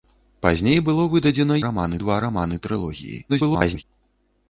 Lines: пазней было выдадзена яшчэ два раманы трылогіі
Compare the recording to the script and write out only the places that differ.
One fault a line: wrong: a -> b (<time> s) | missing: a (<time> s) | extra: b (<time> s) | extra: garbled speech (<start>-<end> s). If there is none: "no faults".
wrong: яшчэ -> раманы (1.7 s)
extra: garbled speech (3.3-3.8 s)